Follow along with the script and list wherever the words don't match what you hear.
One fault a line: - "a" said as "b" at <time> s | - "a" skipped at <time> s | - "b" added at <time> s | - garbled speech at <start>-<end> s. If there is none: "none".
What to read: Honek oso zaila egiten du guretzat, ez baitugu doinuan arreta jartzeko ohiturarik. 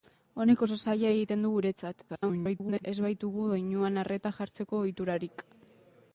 - garbled speech at 2.1-2.8 s